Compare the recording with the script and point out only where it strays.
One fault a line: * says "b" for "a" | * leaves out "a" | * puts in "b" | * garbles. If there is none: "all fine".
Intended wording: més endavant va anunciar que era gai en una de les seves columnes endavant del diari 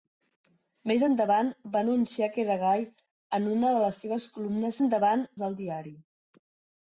all fine